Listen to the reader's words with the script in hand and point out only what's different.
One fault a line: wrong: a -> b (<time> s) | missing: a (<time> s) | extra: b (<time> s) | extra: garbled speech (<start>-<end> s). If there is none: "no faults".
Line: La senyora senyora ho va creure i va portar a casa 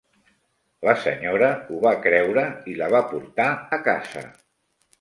missing: senyora (1.5 s)
extra: la (2.8 s)